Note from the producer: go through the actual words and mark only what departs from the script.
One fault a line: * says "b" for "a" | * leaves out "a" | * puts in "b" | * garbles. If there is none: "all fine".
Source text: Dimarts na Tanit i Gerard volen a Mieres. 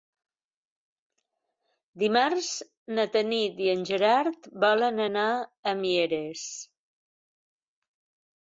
* puts in "en"
* puts in "anar"